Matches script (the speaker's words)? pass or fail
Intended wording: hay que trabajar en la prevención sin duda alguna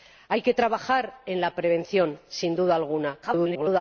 fail